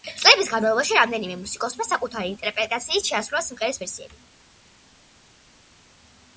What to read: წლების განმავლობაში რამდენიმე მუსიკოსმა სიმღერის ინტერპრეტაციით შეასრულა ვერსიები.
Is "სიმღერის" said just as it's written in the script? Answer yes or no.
no